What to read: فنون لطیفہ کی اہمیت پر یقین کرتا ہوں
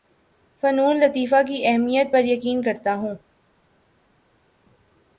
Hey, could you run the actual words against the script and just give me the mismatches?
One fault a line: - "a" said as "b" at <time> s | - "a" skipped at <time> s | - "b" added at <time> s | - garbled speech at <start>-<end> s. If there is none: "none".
none